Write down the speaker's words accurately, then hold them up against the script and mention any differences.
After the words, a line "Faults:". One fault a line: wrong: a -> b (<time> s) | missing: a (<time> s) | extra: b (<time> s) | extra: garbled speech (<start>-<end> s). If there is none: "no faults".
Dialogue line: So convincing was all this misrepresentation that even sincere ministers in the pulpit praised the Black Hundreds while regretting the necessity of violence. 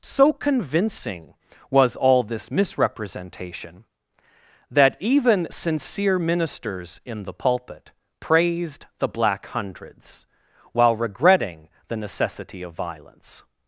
So convincing was all this misrepresentation that even sincere ministers in the pulpit praised the Black Hundreds while regretting the necessity of violence.
Faults:
no faults